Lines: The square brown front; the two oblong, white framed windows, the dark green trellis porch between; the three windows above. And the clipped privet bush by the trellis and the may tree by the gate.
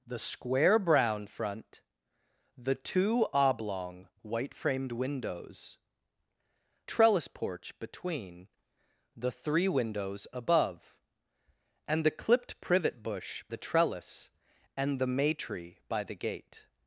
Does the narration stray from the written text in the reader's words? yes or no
yes